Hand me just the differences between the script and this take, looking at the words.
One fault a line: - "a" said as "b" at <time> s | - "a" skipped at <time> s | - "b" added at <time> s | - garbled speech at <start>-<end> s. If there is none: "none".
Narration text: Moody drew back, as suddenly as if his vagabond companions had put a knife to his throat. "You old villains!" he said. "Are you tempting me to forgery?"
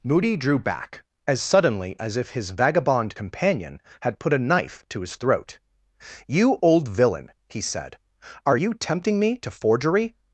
- "companions" said as "companion" at 3.1 s
- "villains" said as "villain" at 6.9 s